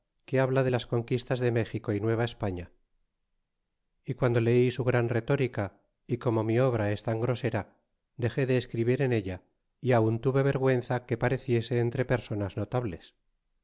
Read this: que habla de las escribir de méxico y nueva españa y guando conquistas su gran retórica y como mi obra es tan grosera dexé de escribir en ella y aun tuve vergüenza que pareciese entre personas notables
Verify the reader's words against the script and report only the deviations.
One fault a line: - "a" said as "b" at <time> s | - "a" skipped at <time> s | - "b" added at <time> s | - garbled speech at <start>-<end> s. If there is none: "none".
- "escribir" said as "conquistas" at 0.9 s
- "conquistas" said as "leí" at 4.4 s